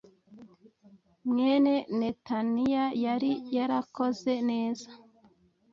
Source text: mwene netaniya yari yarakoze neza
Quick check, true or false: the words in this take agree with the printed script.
true